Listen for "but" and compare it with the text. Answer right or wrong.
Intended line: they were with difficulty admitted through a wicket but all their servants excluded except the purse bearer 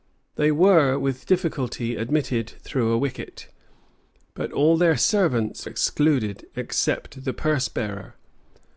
right